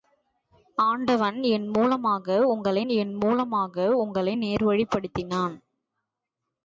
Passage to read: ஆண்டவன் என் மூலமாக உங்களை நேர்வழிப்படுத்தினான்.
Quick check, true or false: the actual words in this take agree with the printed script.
false